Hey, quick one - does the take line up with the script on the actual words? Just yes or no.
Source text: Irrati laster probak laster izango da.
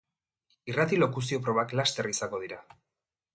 no